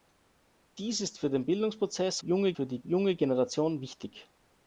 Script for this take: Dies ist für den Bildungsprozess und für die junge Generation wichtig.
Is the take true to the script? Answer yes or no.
no